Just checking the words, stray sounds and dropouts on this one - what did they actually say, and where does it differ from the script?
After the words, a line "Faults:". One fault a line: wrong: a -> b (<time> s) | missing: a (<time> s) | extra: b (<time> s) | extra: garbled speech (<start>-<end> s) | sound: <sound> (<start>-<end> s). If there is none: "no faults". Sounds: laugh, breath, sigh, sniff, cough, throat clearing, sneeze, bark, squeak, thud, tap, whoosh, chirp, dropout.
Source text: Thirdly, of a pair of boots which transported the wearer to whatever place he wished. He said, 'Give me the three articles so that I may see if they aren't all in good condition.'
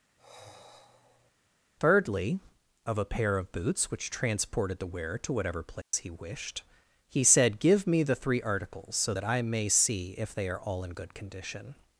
Thirdly, of a pair of boots which transported the wearer to whatever place he wished. He said, 'Give me the three articles so that I may see if they are all in good condition.'
Faults:
sound: sigh (0.2-1.3 s)
sound: dropout (5.8-5.9 s)
wrong: aren't -> are (10.5 s)